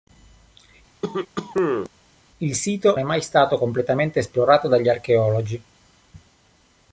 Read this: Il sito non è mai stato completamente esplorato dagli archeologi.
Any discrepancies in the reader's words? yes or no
yes